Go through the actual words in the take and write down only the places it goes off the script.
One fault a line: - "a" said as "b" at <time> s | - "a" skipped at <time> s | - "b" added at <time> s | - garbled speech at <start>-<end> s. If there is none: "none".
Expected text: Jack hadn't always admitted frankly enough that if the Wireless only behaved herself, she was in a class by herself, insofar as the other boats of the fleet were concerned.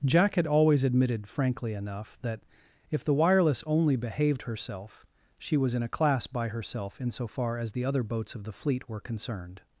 - "hadn't" said as "had" at 0.3 s